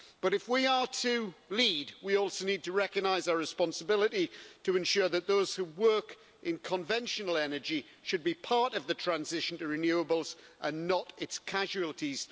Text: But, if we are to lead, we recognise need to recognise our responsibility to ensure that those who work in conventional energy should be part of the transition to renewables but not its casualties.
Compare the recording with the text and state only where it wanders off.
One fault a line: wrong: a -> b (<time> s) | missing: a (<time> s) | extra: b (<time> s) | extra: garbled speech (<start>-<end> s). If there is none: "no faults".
wrong: recognise -> also (2.1 s)
wrong: but -> and (10.6 s)